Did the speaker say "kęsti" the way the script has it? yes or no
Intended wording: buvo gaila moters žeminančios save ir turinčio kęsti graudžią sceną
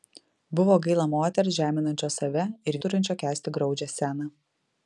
yes